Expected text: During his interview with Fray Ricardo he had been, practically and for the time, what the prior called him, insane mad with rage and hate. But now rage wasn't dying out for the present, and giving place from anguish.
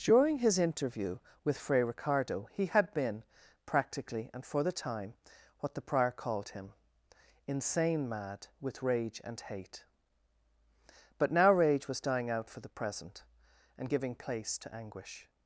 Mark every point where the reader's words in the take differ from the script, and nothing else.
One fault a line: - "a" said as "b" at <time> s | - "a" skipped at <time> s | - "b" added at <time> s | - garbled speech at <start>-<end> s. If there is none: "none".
- "wasn't" said as "was" at 11.9 s
- "from" said as "to" at 14.6 s